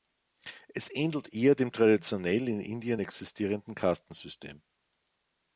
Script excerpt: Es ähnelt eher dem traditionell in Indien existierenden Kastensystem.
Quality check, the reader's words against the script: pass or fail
pass